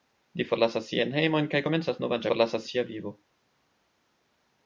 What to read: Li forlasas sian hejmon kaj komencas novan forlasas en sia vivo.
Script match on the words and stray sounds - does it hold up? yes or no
yes